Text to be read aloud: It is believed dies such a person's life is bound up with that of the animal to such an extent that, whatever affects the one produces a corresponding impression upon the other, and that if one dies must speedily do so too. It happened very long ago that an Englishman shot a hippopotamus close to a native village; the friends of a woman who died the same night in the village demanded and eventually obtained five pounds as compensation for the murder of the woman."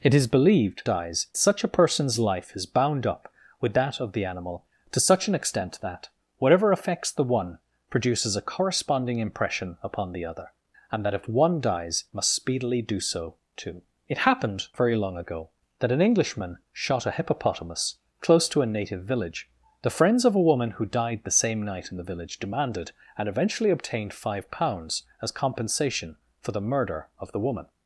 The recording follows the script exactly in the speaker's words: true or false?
true